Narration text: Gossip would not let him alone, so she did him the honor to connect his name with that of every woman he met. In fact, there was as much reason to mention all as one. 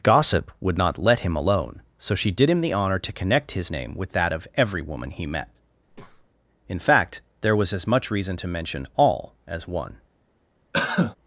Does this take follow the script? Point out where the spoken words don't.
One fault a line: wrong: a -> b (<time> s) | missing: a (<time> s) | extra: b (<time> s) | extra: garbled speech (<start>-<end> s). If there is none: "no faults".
no faults